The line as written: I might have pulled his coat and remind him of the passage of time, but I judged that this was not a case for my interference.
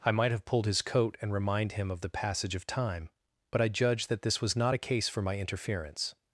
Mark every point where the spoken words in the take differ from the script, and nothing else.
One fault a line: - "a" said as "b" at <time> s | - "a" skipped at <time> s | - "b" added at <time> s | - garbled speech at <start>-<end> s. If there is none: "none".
none